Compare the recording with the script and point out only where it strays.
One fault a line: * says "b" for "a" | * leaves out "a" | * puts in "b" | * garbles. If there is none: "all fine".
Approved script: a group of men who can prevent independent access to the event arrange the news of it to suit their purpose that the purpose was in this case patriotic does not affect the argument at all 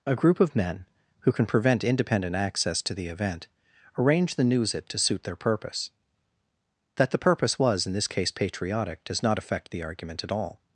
* leaves out "of"